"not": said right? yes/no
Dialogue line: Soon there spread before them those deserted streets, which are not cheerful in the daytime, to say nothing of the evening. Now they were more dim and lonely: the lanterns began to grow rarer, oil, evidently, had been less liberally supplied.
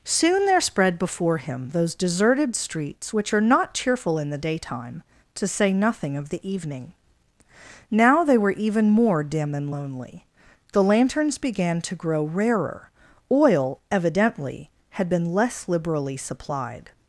yes